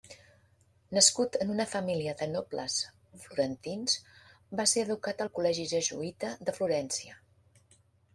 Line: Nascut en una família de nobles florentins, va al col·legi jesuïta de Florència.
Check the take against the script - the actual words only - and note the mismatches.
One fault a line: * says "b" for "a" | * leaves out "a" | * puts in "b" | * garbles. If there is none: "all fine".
* puts in "ser educat"